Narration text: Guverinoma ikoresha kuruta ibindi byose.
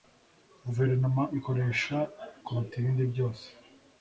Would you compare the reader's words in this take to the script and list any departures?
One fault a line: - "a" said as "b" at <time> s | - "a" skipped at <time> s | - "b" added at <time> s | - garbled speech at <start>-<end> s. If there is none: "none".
none